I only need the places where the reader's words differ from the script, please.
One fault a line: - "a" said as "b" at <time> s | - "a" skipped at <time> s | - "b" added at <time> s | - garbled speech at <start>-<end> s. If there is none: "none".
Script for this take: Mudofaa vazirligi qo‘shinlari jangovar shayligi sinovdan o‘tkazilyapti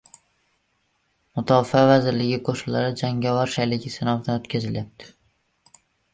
none